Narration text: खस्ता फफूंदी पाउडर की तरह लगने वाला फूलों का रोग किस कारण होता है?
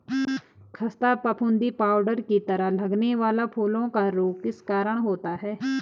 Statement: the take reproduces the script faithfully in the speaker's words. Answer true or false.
true